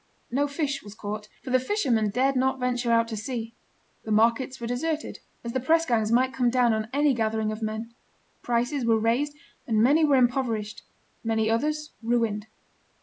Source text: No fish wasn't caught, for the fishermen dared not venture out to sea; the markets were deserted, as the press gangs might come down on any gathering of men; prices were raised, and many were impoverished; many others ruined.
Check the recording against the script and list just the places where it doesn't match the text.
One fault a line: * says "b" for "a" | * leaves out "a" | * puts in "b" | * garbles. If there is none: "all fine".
* says "was" for "wasn't"